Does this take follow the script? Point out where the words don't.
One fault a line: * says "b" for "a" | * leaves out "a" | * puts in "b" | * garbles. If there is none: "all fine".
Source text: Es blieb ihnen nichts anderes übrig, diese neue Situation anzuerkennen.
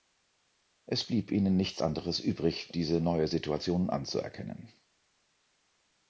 all fine